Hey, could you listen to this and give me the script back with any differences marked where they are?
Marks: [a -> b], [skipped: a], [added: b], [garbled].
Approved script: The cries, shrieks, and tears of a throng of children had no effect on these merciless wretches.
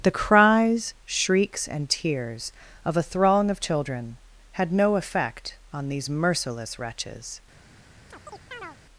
The cries, shrieks, and tears of a throng of children had no effect on these merciless wretches.